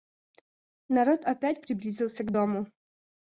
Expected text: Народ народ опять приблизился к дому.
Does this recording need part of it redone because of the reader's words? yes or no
yes